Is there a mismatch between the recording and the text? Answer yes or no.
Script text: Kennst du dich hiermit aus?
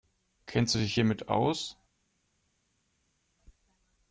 no